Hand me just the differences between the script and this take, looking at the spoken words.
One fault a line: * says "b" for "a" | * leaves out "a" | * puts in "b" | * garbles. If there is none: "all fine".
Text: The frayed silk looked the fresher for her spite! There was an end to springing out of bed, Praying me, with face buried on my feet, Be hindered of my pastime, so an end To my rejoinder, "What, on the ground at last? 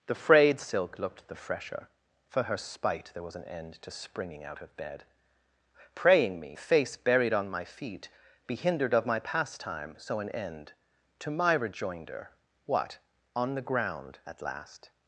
* leaves out "with"